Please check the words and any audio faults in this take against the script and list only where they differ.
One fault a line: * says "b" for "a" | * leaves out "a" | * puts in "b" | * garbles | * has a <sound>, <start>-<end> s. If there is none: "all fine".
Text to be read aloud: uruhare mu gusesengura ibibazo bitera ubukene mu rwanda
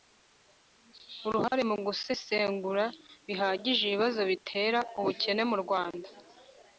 * has a dropout, 1.5-1.5 s
* puts in "bihagije"